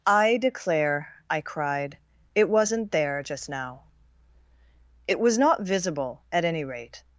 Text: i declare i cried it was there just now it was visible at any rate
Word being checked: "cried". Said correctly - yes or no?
yes